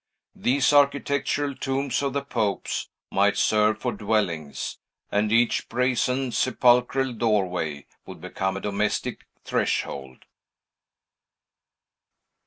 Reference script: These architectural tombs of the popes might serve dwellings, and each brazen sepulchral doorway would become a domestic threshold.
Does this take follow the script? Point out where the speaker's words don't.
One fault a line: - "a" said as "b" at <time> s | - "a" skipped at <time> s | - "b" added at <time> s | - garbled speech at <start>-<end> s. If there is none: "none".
- "for" added at 3.8 s